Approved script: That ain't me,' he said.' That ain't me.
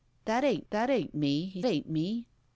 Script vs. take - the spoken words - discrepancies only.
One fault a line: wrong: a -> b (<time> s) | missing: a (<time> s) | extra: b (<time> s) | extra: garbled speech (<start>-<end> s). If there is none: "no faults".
extra: that ain't (0.7 s)
missing: said That (1.6 s)